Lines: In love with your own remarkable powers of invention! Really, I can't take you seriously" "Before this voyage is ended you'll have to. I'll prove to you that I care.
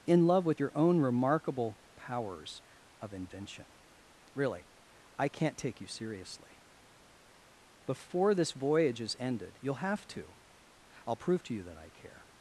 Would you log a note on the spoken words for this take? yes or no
no